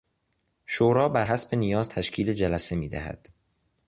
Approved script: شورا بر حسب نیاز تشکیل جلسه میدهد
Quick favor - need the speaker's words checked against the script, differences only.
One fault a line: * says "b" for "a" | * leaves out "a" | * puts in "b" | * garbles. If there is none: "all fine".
all fine